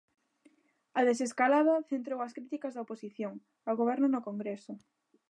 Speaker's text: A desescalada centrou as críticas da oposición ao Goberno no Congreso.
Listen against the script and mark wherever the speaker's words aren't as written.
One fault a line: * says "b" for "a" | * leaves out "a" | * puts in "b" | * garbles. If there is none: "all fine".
all fine